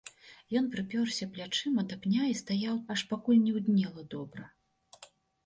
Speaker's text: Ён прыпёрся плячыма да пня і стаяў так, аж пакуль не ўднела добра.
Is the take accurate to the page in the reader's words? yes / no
no